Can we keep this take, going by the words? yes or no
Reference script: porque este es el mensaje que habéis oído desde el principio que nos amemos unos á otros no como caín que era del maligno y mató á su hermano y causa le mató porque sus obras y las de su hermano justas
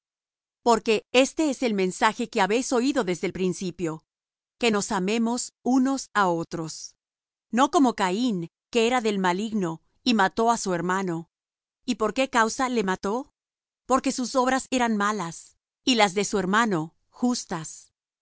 no